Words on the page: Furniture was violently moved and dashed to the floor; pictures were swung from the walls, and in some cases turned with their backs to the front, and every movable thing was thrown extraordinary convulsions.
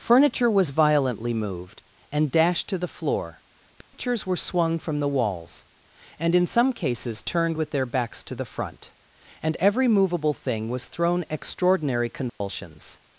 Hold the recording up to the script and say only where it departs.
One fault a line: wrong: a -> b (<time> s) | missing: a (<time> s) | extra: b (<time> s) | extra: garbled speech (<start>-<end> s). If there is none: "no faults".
no faults